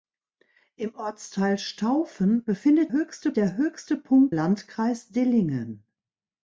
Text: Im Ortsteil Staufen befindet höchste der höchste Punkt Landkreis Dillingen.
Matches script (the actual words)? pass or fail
pass